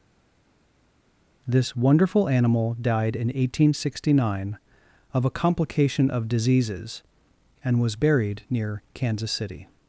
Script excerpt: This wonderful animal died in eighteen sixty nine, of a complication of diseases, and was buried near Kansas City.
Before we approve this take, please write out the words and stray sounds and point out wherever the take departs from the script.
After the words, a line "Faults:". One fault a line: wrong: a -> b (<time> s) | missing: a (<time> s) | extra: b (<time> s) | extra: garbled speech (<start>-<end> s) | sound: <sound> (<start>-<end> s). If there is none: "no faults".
This wonderful animal died in eighteen sixty nine, of a complication of diseases, and was buried near Kansas City.
Faults:
no faults